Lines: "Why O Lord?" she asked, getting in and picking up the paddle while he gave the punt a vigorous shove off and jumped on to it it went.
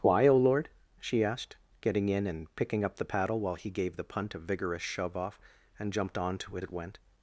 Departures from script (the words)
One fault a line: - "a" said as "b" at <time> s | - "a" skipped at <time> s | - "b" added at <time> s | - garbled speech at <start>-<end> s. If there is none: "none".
none